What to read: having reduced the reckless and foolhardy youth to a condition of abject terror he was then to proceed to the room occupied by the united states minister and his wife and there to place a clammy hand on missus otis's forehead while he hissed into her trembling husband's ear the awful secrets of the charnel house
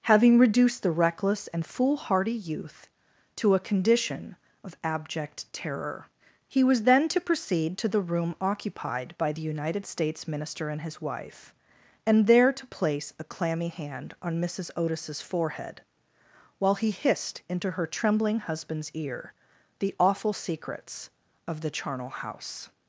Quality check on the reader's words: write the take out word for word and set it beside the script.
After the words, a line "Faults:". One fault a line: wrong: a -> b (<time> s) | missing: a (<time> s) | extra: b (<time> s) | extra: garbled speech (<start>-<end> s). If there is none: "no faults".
having reduced the reckless and foolhardy youth to a condition of abject terror he was then to proceed to the room occupied by the united states minister and his wife and there to place a clammy hand on missus otis's forehead while he hissed into her trembling husband's ear the awful secrets of the charnel house
Faults:
no faults